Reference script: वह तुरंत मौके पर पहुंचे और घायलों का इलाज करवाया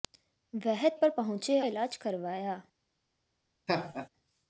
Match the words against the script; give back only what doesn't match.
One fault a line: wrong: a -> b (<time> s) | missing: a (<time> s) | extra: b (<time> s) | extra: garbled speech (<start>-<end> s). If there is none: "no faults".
missing: तुरंत मौके (0.9 s)
missing: और घायलों का (1.6 s)